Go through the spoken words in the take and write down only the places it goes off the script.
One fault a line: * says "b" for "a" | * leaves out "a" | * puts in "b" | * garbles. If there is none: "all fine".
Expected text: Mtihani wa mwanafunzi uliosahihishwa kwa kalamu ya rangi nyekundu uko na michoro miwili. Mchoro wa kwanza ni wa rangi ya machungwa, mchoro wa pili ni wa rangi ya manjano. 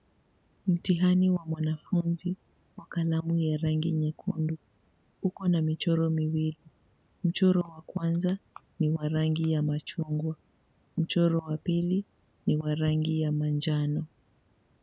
* leaves out "uliosahihishwa"